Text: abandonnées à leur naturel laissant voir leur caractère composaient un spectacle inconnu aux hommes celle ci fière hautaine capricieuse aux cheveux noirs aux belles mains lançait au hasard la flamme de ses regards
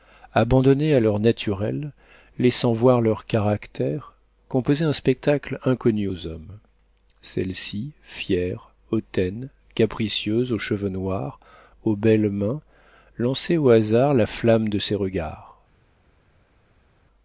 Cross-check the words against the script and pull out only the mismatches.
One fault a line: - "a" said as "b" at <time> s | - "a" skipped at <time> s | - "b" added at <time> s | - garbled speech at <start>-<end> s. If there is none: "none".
none